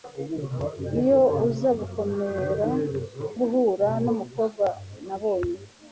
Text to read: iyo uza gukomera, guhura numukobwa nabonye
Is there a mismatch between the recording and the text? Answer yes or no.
no